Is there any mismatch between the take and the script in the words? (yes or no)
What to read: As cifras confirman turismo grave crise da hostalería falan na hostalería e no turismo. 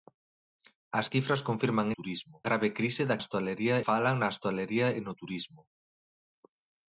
no